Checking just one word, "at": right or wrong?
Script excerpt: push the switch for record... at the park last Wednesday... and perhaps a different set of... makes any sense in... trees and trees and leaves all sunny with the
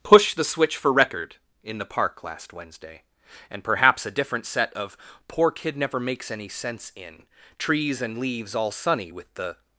wrong